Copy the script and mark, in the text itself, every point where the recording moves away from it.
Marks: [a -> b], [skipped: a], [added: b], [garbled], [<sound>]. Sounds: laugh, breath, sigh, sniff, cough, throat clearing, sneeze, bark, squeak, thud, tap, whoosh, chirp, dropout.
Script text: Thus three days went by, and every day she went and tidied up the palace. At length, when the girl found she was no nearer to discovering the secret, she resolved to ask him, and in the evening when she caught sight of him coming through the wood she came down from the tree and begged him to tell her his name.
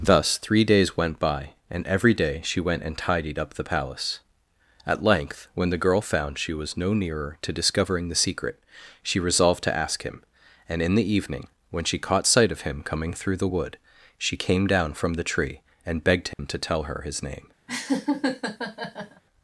Thus three days went by, and every day she went and tidied up the palace. At length, when the girl found she was no nearer to discovering the secret, she resolved to ask him, and in the evening when she caught sight of him coming through the wood she came down from the tree and begged him [dropout] to tell her his name. [laugh]